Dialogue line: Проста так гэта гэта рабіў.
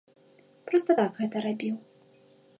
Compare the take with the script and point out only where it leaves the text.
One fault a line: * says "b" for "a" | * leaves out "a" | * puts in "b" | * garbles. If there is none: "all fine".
* leaves out "гэта"